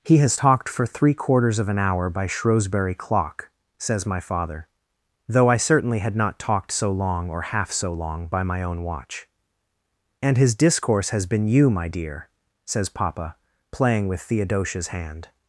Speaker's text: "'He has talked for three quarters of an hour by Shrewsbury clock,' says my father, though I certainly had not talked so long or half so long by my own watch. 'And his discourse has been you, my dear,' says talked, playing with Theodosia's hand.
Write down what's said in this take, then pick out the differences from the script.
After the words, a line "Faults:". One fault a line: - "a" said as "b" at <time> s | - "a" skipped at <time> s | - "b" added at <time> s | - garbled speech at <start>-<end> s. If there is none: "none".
"'He has talked for three quarters of an hour by Shrewsbury clock,' says my father, though I certainly had not talked so long or half so long by my own watch. 'And his discourse has been you, my dear,' says papa, playing with Theodosia's hand.
Faults:
- "talked" said as "papa" at 12.9 s